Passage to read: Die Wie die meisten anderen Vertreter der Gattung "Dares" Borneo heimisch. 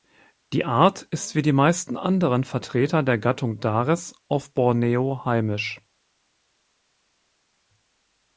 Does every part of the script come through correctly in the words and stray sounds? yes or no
no